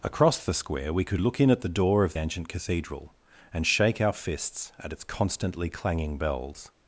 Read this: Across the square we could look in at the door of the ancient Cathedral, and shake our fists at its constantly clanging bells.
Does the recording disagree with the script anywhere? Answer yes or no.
yes